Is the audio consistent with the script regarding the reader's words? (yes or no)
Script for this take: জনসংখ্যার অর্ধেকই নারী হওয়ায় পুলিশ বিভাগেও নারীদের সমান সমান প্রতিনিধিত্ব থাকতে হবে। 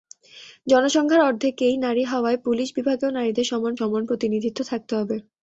yes